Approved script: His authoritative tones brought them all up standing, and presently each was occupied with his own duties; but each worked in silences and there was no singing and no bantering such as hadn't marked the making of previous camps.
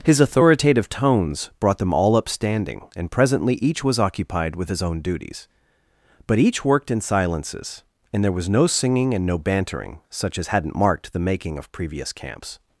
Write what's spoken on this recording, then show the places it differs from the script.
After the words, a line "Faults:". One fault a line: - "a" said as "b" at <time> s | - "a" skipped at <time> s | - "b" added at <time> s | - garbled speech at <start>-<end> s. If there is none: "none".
His authoritative tones brought them all up standing, and presently each was occupied with his own duties; but each worked in silences and there was no singing and no bantering such as hadn't marked the making of previous camps.
Faults:
none